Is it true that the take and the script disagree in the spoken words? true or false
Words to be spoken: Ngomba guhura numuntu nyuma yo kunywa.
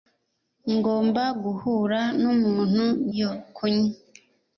true